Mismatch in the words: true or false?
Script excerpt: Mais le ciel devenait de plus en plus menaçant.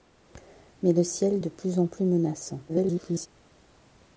true